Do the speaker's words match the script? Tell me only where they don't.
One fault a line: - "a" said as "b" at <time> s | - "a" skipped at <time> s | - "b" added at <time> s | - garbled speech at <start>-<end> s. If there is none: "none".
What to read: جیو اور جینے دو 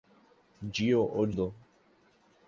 - "جینے" skipped at 1.3 s